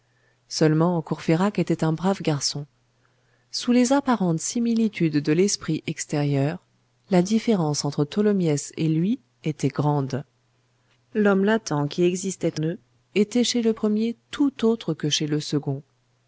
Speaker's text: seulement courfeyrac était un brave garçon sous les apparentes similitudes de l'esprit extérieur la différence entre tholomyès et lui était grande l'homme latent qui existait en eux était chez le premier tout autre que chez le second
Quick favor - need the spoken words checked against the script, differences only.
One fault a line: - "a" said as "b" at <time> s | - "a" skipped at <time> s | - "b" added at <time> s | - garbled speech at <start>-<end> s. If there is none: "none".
- "en" skipped at 12.6 s